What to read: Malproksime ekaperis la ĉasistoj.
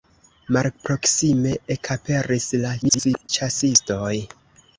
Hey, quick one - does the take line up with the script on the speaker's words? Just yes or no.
no